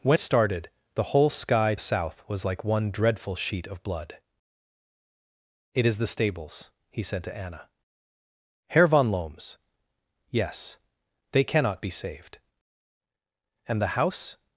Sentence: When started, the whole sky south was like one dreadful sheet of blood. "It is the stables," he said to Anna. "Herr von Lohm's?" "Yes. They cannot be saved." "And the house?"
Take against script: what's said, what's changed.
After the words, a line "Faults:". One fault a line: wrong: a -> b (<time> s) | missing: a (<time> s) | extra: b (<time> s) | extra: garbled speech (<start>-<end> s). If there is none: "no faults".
When started, the whole sky south was like one dreadful sheet of blood. "It is the stables," he said to Anna. "Herr von Lohm's?" "Yes. They cannot be saved." "And the house?"
Faults:
no faults